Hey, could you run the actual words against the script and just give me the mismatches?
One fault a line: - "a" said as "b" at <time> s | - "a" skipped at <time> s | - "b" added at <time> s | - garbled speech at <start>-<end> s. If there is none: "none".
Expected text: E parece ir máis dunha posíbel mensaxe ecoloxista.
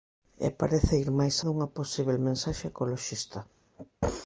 none